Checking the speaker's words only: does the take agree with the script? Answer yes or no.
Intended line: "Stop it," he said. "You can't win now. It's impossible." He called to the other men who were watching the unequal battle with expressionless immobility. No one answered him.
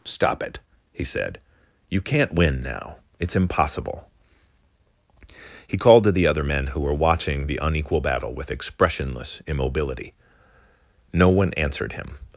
yes